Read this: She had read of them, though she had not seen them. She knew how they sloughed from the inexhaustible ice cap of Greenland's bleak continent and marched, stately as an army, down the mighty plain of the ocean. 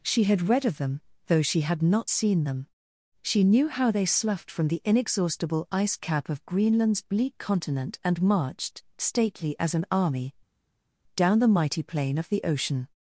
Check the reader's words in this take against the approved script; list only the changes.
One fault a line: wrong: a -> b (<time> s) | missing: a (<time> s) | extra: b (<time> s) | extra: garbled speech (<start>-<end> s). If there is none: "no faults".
no faults